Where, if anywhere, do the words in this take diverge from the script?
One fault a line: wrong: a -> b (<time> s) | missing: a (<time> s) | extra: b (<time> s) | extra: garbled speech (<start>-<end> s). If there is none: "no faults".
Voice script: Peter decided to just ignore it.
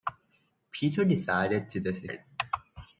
missing: ignore (2.1 s)